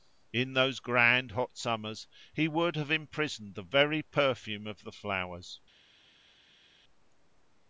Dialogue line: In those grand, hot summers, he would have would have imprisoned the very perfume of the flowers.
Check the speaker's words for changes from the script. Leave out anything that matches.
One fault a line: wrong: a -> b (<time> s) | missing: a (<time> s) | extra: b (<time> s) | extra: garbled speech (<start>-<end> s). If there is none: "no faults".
missing: would have (2.9 s)